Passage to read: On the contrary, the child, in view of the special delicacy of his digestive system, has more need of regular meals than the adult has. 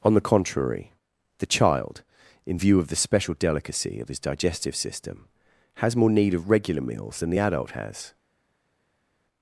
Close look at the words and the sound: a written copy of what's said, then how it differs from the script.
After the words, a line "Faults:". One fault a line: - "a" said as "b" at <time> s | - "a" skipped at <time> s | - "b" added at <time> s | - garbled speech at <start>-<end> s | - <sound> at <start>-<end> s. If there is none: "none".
On the contrary, the child, in view of the special delicacy of his digestive system, has more need of regular meals than the adult has.
Faults:
none